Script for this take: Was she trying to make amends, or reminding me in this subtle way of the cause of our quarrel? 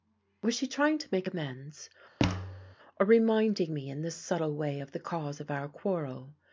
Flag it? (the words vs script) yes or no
no